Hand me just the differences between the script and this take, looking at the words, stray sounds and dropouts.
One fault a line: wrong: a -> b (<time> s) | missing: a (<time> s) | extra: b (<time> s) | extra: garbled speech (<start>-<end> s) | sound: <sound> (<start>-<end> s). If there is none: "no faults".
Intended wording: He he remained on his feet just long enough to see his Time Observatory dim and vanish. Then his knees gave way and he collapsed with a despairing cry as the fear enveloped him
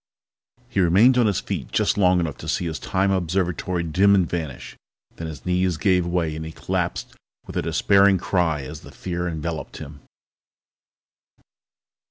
missing: he (0.8 s)